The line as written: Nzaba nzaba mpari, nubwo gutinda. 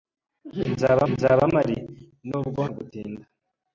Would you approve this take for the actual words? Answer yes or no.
yes